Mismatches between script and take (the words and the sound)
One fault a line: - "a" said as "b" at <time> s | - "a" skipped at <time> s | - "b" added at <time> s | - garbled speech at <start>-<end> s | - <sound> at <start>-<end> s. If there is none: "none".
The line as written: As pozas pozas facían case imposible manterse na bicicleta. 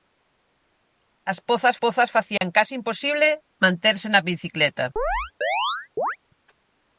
- dropout at 2.4-2.4 s
- chirp at 5.0-6.2 s